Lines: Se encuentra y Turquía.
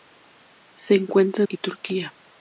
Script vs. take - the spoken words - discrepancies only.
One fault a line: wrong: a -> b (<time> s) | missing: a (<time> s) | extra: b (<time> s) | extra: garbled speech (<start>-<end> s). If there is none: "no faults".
no faults